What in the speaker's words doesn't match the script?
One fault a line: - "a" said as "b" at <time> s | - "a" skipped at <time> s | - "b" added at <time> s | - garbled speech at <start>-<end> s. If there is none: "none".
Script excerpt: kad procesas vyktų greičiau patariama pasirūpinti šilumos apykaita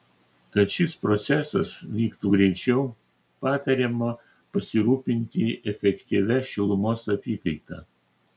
- "šis" added at 0.8 s
- "efektyvia" added at 5.7 s